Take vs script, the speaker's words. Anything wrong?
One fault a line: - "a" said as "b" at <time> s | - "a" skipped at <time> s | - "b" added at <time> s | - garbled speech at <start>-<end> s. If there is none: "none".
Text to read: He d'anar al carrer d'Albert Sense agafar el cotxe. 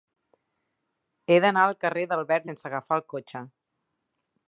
none